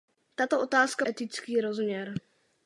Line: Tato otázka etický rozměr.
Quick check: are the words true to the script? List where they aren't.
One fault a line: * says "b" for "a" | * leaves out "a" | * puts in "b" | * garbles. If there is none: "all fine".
all fine